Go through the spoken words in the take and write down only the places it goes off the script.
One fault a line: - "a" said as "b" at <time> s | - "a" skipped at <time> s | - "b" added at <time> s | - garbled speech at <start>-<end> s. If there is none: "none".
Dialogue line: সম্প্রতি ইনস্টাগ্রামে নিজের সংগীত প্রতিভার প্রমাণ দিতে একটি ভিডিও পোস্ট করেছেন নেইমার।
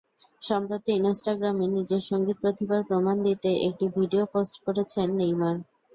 none